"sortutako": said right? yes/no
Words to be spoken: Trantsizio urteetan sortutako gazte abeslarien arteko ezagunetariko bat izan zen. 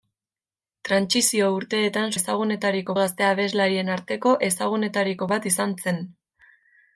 no